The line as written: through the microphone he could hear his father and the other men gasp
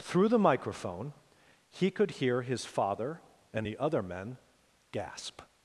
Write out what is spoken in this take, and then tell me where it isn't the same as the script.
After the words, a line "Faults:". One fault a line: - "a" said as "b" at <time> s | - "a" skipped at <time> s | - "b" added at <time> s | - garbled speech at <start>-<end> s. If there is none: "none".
through the microphone he could hear his father and the other men gasp
Faults:
none